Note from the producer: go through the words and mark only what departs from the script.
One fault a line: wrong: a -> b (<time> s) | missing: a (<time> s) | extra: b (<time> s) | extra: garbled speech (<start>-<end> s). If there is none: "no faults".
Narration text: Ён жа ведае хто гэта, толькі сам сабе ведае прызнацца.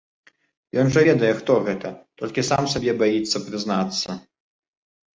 wrong: ведае -> баіцца (3.0 s)